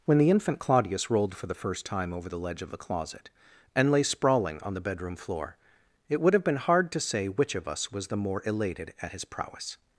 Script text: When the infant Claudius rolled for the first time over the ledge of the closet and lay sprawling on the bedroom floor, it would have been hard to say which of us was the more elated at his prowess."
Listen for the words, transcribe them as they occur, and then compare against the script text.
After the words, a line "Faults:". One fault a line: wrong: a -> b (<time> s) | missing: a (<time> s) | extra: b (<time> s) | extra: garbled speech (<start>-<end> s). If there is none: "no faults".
When the infant Claudius rolled for the first time over the ledge of the closet and lay sprawling on the bedroom floor, it would have been hard to say which of us was the more elated at his prowess."
Faults:
no faults